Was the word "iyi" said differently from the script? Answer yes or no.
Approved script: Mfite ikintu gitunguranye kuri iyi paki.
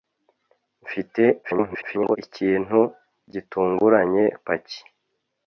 yes